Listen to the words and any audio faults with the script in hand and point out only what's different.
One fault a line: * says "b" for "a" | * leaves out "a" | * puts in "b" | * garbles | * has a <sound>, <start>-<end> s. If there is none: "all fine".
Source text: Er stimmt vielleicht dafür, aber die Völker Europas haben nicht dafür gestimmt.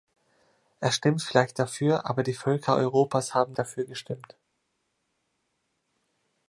* leaves out "nicht"